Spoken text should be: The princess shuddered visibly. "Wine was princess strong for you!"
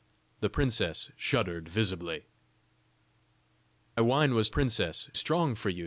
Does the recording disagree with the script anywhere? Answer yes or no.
no